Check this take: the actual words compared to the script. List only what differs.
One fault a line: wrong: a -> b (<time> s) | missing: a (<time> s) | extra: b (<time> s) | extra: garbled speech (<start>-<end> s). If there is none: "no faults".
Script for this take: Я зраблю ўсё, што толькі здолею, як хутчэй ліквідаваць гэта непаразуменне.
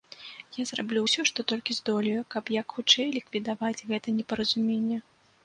extra: каб (2.4 s)